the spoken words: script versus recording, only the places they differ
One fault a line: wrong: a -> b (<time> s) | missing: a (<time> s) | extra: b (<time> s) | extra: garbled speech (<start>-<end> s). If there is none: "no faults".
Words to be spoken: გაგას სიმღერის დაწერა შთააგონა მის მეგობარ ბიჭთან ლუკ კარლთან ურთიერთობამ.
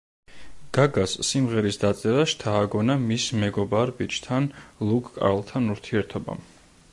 no faults